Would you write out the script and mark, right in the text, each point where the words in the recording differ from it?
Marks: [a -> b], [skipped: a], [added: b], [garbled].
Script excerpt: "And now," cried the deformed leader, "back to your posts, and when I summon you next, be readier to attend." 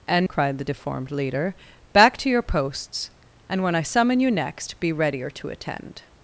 "And [skipped: now,"] cried the deformed leader, "back to your posts, and when I summon you next, be readier to attend."